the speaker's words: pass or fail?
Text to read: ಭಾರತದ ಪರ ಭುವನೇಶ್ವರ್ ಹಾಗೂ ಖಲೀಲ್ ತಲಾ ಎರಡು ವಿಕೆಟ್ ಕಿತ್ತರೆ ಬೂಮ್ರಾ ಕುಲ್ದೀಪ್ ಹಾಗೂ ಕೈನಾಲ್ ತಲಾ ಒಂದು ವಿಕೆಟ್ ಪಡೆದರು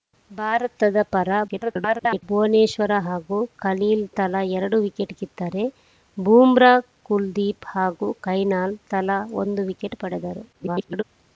fail